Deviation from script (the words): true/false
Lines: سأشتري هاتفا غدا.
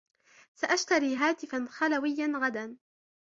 true